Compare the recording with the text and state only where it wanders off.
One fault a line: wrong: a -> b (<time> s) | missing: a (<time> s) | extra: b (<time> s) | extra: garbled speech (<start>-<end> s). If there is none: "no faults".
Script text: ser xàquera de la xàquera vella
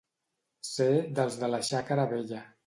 wrong: xàquera -> dels (1.2 s)